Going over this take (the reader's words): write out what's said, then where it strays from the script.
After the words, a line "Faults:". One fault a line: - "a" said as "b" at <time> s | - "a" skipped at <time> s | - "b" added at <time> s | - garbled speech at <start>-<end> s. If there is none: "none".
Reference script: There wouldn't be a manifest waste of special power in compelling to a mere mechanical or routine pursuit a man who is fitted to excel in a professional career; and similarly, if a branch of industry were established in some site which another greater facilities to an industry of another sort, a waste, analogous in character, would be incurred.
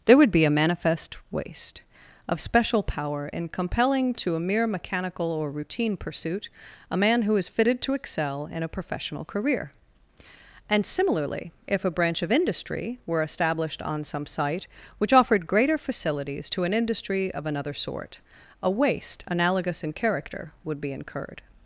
There would be a manifest waste of special power in compelling to a mere mechanical or routine pursuit a man who is fitted to excel in a professional career; and similarly, if a branch of industry were established on some site which offered greater facilities to an industry of another sort, a waste, analogous in character, would be incurred.
Faults:
- "wouldn't" said as "would" at 0.2 s
- "in" said as "on" at 13.8 s
- "another" said as "offered" at 15.1 s